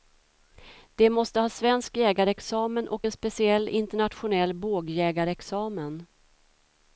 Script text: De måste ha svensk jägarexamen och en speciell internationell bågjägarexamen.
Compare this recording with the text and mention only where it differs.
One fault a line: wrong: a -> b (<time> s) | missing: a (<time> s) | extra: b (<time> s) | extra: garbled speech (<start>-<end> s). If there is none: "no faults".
no faults